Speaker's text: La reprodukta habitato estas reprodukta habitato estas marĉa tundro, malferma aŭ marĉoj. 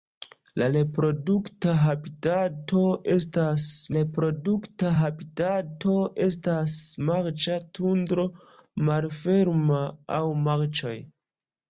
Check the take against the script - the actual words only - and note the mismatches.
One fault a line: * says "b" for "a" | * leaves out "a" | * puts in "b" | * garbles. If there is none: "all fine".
all fine